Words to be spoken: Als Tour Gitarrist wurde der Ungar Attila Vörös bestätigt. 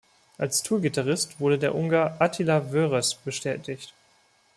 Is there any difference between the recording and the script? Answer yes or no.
no